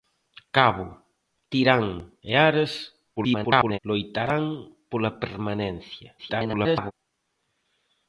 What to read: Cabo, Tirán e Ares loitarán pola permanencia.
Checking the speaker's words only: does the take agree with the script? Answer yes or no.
no